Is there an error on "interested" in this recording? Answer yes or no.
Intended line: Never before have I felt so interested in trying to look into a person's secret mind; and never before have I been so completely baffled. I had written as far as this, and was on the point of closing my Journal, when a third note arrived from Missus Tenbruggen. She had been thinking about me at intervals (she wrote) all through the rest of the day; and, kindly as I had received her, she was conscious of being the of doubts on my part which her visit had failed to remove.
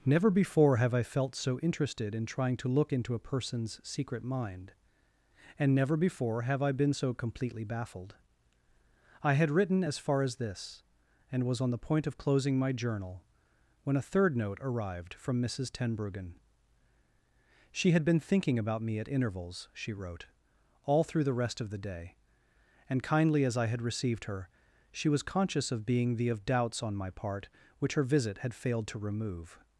no